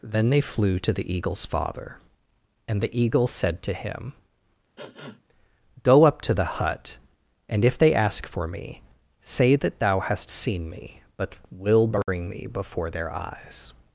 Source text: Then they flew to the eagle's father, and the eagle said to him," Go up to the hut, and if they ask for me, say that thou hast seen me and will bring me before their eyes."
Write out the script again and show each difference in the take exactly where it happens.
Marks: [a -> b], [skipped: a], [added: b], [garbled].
Then they flew to the eagle's father, and the eagle said to him," Go up to the hut, and if they ask for me, say that thou hast seen me [and -> but] will bring me before their eyes."